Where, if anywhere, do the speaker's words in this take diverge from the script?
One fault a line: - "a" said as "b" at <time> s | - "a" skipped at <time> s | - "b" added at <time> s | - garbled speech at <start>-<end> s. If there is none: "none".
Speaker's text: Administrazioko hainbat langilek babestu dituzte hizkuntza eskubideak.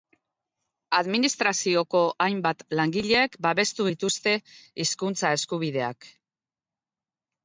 none